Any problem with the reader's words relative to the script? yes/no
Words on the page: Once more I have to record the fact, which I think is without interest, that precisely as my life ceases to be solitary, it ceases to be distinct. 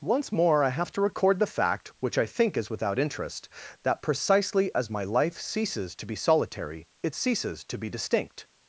no